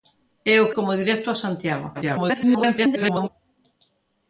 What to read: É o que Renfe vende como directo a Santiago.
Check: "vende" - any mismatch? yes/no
yes